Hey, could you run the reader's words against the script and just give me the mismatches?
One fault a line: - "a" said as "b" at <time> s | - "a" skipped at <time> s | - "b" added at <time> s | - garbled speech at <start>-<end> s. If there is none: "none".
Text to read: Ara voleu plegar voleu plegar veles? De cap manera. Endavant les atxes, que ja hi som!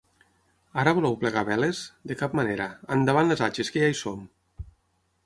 - "voleu plegar" skipped at 1.4 s